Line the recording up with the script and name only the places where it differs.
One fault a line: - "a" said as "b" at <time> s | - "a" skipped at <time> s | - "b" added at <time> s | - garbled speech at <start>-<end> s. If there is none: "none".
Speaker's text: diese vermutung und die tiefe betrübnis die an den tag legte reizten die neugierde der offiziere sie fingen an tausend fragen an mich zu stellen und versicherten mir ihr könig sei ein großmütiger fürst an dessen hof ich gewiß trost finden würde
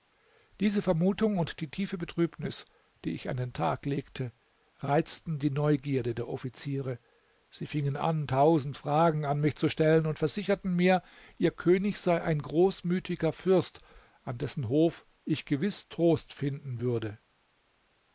- "ich" added at 3.1 s